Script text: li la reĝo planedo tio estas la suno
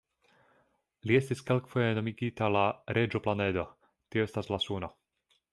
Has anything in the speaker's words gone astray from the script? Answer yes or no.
yes